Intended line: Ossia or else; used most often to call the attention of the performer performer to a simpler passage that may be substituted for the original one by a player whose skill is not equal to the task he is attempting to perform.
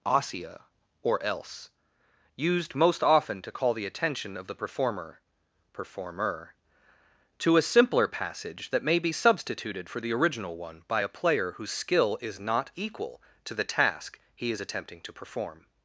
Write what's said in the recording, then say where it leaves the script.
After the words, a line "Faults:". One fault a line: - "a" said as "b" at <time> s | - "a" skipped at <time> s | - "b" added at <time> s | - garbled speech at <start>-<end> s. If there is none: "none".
Ossia or else; used most often to call the attention of the performer performer to a simpler passage that may be substituted for the original one by a player whose skill is not equal to the task he is attempting to perform.
Faults:
none